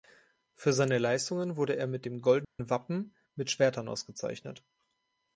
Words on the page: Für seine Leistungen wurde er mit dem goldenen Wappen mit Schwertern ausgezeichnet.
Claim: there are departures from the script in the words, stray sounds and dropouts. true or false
true